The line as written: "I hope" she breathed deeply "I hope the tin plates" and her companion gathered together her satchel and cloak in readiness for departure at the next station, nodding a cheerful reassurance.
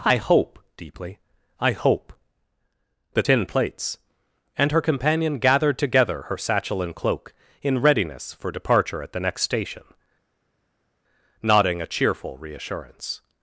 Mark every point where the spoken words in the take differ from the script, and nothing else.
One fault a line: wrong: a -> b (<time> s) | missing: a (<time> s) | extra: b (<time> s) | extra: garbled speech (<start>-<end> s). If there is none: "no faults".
missing: she breathed (0.6 s)